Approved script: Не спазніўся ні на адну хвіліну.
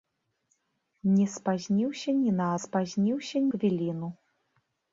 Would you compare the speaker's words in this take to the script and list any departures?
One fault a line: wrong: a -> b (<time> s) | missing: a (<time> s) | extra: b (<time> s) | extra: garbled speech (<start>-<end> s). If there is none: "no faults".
wrong: адну -> спазніўся (2.6 s)